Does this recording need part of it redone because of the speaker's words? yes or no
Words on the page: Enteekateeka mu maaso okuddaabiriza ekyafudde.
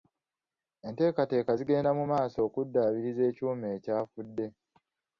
yes